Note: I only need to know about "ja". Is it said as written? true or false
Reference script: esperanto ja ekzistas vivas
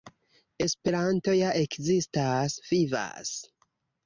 true